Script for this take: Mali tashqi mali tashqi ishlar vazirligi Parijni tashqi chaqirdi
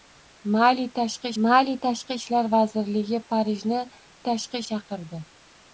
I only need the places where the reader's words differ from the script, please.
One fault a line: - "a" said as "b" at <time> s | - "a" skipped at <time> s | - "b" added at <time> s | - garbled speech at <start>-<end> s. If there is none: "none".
none